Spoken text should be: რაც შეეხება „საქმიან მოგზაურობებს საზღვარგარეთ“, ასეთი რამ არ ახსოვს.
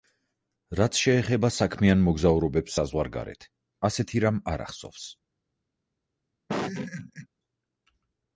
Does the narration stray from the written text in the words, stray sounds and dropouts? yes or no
yes